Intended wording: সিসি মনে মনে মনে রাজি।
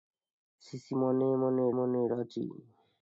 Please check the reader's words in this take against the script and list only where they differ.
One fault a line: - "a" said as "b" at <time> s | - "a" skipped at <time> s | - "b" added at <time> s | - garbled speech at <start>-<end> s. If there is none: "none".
none